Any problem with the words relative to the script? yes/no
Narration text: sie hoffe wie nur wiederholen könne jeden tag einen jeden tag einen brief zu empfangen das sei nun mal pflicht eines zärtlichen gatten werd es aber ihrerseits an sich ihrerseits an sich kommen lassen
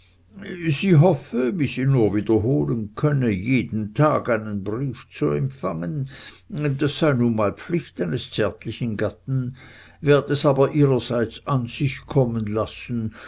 yes